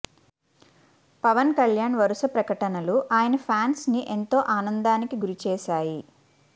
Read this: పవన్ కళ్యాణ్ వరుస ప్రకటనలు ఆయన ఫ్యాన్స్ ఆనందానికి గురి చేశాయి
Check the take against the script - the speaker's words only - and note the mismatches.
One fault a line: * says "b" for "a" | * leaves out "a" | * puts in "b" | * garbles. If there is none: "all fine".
* puts in "ని ఎంతో"